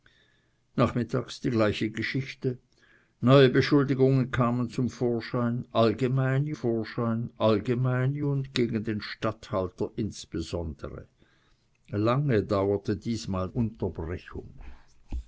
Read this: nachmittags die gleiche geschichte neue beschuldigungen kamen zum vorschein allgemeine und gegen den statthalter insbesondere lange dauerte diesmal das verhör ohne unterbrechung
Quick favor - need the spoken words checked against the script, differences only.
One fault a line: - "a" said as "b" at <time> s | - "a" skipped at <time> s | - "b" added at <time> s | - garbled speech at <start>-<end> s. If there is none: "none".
- "vorschein allgemeine" added at 6.5 s
- "das verhör ohne" skipped at 13.5 s